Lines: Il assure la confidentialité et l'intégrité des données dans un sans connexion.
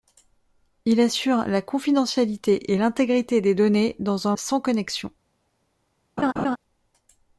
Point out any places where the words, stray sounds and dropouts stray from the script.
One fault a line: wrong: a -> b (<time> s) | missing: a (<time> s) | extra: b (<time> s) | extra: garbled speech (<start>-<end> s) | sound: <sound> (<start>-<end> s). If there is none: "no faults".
sound: laugh (6.2-6.6 s)